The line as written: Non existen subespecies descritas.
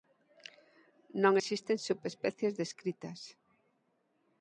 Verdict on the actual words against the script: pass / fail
pass